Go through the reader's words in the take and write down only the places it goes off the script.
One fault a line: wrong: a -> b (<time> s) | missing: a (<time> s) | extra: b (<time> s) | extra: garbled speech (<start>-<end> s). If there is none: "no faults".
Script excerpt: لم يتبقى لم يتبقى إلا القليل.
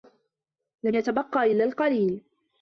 missing: لم يتبقى (1.5 s)